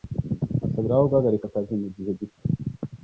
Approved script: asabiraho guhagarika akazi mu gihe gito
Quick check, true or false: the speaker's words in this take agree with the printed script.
true